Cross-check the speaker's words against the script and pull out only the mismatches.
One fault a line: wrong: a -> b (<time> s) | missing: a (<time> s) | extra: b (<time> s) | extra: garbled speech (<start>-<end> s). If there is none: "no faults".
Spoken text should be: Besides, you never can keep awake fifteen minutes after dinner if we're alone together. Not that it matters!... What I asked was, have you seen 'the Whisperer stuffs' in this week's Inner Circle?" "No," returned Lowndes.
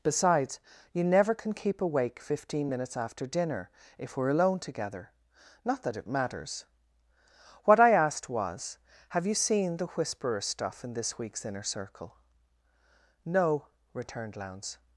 wrong: stuffs -> stuff (10.4 s)